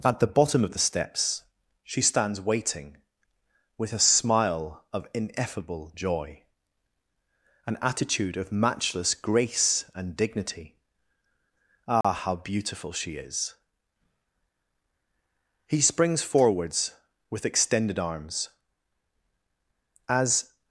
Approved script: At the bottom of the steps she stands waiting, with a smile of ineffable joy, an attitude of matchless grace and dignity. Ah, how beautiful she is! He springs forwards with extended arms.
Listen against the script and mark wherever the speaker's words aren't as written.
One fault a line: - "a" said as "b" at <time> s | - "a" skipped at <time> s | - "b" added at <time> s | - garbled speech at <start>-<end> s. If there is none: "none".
- "As" added at 20.1 s